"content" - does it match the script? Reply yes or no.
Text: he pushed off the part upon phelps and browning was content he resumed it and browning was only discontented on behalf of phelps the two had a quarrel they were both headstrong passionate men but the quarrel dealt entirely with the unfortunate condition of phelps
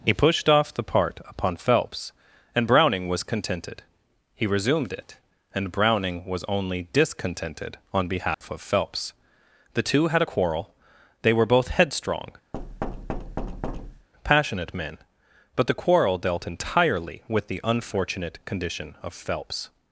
no